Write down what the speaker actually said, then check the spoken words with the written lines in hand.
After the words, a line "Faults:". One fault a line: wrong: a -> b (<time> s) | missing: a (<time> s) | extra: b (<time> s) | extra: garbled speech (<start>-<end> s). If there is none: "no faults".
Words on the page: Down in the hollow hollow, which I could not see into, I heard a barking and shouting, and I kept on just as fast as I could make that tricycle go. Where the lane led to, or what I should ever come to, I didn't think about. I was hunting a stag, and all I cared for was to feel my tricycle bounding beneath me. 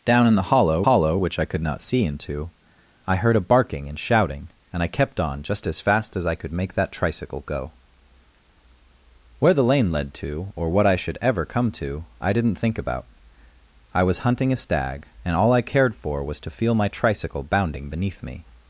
Down in the hollow hollow, which I could not see into, I heard a barking and shouting, and I kept on just as fast as I could make that tricycle go. Where the lane led to, or what I should ever come to, I didn't think about. I was hunting a stag, and all I cared for was to feel my tricycle bounding beneath me.
Faults:
no faults